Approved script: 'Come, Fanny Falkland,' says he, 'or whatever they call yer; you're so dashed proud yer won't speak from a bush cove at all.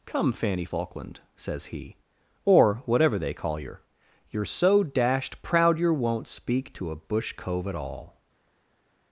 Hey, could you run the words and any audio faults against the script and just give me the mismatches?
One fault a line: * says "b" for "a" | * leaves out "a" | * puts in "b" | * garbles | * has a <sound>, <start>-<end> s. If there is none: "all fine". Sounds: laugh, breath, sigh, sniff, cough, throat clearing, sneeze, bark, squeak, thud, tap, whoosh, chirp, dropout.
* says "to" for "from"